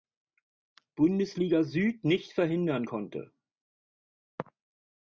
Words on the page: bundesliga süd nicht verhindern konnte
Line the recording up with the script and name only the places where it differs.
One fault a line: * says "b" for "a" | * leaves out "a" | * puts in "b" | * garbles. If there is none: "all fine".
all fine